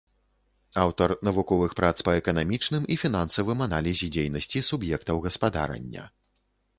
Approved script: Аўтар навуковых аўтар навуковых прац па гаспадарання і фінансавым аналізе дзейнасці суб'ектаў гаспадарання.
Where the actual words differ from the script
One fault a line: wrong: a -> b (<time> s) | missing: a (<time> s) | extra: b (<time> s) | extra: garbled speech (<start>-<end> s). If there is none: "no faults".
missing: аўтар навуковых (1.8 s)
wrong: гаспадарання -> эканамічным (2.2 s)